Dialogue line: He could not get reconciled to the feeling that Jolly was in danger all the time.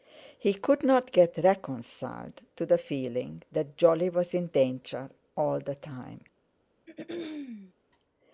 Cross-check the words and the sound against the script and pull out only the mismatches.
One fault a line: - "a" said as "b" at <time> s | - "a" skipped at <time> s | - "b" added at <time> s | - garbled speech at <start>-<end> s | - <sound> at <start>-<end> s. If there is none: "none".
- throat clearing at 6.9-7.7 s